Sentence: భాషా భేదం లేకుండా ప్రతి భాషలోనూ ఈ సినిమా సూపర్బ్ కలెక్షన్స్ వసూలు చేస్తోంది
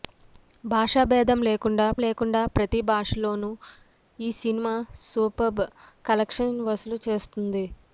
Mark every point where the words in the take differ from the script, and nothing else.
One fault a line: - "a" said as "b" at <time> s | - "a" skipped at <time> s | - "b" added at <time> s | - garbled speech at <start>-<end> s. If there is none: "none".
- "లేకుండా" added at 2.0 s